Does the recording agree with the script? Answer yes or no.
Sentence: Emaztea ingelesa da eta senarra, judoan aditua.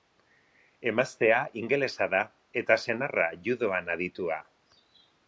yes